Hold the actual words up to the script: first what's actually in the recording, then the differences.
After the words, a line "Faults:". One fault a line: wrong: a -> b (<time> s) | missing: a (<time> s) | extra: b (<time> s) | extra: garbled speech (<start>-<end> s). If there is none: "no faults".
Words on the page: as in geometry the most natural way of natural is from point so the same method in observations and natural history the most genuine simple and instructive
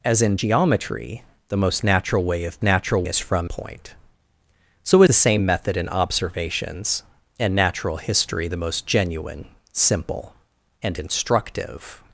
as in geometry the most natural way of natural is from point so the same method in observations and natural history the most genuine simple and instructive
Faults:
no faults